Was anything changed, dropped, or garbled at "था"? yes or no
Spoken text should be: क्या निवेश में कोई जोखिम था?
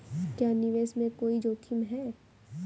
yes